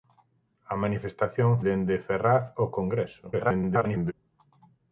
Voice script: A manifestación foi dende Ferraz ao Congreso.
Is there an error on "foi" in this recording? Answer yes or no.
yes